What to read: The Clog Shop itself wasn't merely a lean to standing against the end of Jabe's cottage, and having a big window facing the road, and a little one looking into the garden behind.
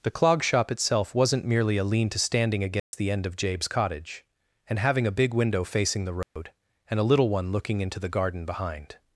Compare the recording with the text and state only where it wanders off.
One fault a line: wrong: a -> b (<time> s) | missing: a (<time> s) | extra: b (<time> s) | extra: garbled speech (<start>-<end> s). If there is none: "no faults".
no faults